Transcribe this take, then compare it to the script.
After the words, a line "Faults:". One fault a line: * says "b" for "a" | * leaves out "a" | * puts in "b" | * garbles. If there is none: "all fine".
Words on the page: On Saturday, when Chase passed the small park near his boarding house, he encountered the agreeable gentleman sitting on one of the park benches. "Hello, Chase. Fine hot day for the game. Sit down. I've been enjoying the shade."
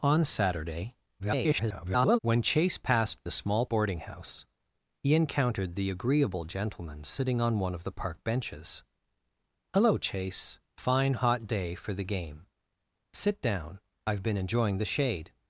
On Saturday, [garbled] when Chase passed the small boarding house, he encountered the agreeable gentleman sitting on one of the park benches. "Hello, Chase. Fine hot day for the game. Sit down. I've been enjoying the shade."
Faults:
* garbles
* leaves out "park near his"